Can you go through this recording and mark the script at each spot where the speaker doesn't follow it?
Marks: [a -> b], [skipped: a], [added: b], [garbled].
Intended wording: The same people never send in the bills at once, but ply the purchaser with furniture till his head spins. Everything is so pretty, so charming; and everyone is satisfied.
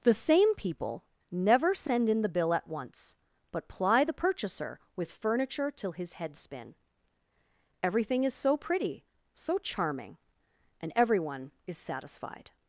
The same people never send in the [bills -> bill] at once, but ply the purchaser with furniture till his head [spins. -> spin] Everything is so pretty, so charming; and everyone is satisfied.